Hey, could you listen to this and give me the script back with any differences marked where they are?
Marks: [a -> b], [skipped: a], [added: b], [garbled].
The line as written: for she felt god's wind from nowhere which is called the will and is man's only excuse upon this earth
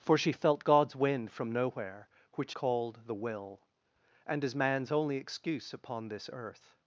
for she felt god's wind from nowhere which [skipped: is] called the will and is man's only excuse upon this earth